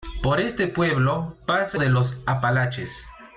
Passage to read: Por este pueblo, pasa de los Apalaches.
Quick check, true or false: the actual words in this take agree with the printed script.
true